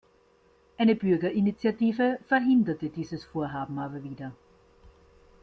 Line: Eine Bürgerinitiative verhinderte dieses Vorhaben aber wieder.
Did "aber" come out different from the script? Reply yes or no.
no